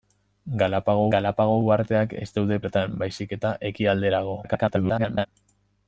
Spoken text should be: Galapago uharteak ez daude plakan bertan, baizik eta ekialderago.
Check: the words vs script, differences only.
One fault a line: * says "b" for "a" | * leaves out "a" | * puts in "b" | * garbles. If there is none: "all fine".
* puts in "galapago"
* leaves out "plakan"
* garbles